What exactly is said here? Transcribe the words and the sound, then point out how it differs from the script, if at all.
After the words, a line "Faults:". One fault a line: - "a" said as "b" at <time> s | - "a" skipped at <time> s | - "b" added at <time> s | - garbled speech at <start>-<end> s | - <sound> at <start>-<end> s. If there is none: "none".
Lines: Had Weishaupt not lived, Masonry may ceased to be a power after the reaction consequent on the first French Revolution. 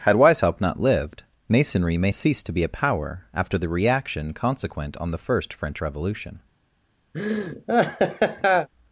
Had Weishaupt not lived, Masonry may ceased to be a power after the reaction consequent on the first French Revolution.
Faults:
- laugh at 7.1-8.7 s